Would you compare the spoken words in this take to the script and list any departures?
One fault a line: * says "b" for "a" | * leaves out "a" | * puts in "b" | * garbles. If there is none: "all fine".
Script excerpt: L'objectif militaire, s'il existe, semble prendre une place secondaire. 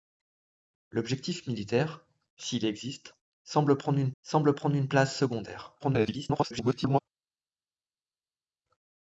* puts in "semble prendre une"
* garbles